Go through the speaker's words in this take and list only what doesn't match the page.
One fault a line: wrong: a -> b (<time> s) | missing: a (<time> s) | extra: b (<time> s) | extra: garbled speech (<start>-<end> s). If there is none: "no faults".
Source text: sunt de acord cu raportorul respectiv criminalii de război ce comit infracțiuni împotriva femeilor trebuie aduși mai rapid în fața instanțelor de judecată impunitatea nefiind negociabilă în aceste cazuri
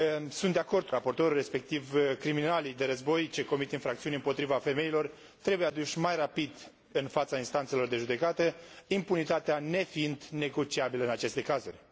missing: cu (0.9 s)